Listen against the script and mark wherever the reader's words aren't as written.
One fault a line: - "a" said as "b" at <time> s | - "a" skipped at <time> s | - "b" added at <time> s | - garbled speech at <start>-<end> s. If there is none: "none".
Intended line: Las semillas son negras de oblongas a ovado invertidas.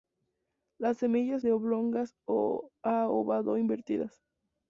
- "son negras" skipped at 1.4 s